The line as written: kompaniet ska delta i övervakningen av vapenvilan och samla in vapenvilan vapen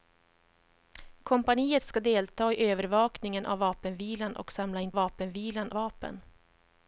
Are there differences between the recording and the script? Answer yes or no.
no